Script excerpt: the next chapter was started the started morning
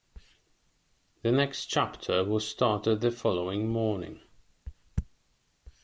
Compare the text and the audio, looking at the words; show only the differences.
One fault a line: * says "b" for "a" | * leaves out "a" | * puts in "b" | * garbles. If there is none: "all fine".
* says "following" for "started"